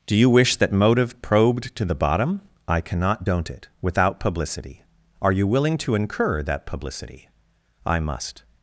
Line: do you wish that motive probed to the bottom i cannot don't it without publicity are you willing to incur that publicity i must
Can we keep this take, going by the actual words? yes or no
yes